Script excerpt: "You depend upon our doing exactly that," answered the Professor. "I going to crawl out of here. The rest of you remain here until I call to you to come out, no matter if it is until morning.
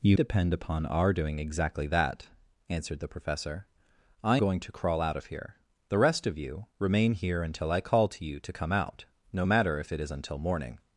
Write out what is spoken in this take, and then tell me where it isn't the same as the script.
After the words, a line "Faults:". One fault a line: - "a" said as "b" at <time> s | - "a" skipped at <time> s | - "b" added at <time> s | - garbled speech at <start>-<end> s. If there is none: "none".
"You depend upon our doing exactly that," answered the Professor. "I going to crawl out of here. The rest of you remain here until I call to you to come out, no matter if it is until morning.
Faults:
none